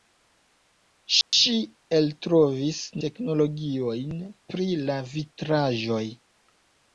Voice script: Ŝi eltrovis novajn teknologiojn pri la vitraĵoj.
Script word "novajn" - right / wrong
wrong